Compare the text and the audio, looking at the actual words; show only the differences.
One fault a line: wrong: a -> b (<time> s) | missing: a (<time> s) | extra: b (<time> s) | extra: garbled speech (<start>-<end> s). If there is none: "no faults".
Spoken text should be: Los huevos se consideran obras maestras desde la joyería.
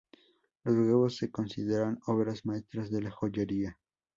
wrong: desde -> de (2.9 s)